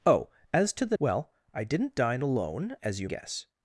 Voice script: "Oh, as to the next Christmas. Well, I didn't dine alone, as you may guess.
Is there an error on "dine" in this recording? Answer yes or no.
no